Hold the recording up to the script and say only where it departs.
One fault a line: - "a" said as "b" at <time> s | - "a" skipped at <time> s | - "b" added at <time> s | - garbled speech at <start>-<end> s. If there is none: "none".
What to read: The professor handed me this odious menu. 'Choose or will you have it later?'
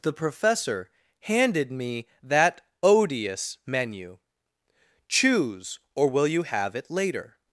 - "this" said as "that" at 2.2 s